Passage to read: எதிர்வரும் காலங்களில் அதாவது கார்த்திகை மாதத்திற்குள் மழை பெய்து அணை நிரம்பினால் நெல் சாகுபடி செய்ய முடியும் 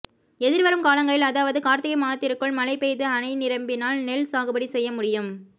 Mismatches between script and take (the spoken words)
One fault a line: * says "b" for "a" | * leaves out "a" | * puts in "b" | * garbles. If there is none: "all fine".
all fine